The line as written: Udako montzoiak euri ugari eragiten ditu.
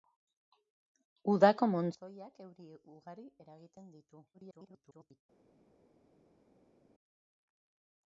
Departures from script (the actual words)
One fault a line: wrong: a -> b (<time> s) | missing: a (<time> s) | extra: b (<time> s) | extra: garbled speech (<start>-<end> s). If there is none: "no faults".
extra: garbled speech (4.3-5.2 s)